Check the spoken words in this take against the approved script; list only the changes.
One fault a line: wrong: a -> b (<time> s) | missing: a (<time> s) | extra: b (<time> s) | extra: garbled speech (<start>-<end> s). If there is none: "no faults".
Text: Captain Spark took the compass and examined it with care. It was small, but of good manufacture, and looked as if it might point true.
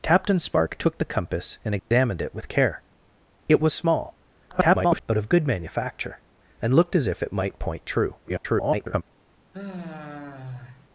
extra: garbled speech (4.5-5.0 s)
extra: garbled speech (8.2-9.0 s)